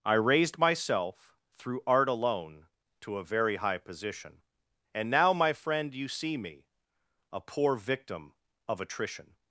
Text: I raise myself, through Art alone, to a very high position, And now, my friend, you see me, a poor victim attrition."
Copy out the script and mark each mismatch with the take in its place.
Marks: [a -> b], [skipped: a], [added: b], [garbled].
I [raise -> raised] myself, through Art alone, to a very high position, And now, my friend, you see me, a poor victim [added: of] attrition."